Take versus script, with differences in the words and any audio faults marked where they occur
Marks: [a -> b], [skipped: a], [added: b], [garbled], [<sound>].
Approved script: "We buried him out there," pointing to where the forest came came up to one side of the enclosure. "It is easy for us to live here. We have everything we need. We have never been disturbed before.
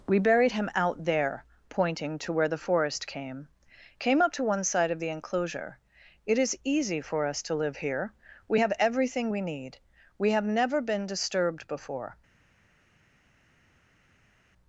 "We buried him out there," pointing to where the forest came came up to one side of the enclosure. "It is easy for us to live here. We have everything we need. We have never been disturbed before.